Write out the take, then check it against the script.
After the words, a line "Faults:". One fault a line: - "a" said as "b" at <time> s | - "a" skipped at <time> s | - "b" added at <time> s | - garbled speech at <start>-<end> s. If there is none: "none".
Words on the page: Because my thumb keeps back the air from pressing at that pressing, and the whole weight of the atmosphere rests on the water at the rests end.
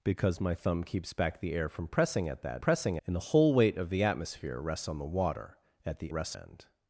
Because my thumb keeps back the air from pressing at that pressing, and the whole weight of the atmosphere rests on the water at the rests end.
Faults:
none